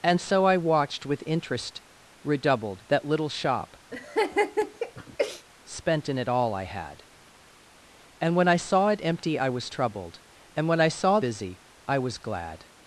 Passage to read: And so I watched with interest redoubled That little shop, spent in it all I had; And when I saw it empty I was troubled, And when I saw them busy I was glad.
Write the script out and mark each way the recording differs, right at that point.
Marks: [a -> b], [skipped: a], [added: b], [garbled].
And so I watched with interest redoubled That little shop, spent in it all I had; And when I saw it empty I was troubled, And when I saw [skipped: them] busy I was glad.